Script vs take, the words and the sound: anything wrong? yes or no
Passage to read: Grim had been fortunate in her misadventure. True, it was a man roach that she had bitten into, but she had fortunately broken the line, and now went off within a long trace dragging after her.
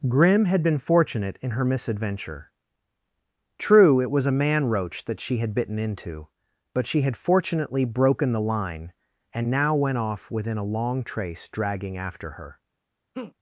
yes